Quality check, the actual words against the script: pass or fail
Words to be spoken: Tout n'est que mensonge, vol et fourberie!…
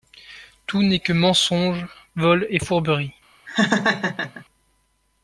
pass